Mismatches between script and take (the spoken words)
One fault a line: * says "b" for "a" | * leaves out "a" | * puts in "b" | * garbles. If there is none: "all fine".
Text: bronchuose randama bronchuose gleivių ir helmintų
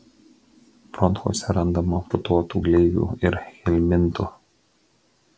* says "putotų" for "bronchuose"